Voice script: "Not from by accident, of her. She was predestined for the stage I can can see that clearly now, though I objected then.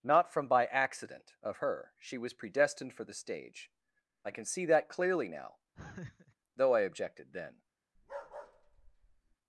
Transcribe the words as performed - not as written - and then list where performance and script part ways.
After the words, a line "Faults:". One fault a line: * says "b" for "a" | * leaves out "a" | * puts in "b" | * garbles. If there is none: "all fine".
"Not from by accident, of her. She was predestined for the stage I can see that clearly now, though I objected then.
Faults:
* leaves out "can"